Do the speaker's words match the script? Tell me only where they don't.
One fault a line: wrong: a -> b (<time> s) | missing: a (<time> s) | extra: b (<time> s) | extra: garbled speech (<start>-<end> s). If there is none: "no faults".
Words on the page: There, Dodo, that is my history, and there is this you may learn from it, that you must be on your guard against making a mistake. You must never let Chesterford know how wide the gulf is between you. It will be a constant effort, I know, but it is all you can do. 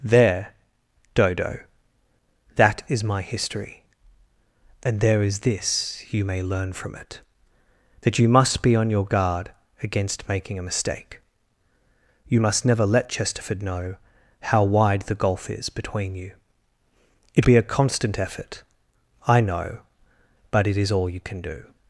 missing: will (17.5 s)